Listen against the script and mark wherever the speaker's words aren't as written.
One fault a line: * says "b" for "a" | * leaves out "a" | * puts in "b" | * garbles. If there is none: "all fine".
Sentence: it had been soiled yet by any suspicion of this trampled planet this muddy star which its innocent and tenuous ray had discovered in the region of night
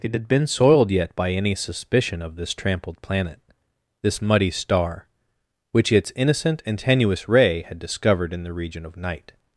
all fine